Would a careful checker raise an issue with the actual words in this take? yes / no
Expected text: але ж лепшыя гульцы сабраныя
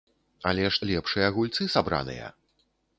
no